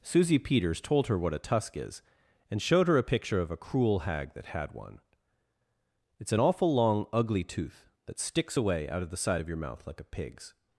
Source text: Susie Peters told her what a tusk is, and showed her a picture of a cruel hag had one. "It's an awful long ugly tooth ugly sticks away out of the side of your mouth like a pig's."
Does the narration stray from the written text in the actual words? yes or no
yes